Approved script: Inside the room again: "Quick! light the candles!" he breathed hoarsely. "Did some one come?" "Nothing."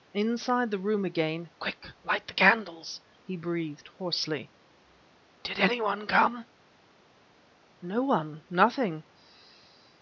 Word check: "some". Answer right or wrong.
wrong